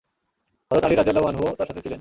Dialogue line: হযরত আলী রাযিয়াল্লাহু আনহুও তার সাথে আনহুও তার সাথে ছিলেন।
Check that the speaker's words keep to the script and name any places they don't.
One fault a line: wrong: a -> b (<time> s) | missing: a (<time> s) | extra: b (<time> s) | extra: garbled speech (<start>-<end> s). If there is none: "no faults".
missing: আনহুও তার সাথে (1.8 s)